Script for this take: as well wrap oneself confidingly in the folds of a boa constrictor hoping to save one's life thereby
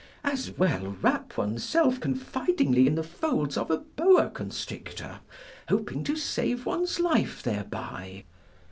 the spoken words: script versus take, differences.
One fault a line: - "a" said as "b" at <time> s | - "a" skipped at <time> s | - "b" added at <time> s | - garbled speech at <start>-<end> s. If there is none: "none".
none